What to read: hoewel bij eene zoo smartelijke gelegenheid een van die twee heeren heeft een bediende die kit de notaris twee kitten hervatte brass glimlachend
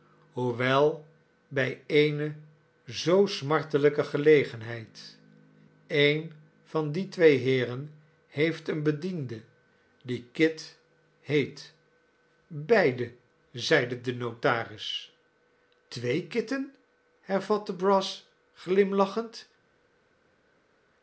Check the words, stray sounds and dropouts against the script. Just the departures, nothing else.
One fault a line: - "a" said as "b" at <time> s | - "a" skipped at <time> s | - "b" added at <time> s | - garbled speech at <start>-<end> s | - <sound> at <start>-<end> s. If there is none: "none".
- "heet beide zeide" added at 11.2 s